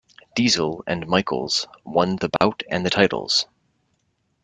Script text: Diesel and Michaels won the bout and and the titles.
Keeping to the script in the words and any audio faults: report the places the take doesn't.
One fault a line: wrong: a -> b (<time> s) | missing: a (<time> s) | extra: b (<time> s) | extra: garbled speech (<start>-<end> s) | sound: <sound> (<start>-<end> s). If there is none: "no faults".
sound: dropout (2.4-2.4 s)
missing: and (2.9 s)